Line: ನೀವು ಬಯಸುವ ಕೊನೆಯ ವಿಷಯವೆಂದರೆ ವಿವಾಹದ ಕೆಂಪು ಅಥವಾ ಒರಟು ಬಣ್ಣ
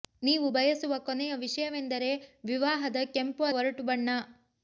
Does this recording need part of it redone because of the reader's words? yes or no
yes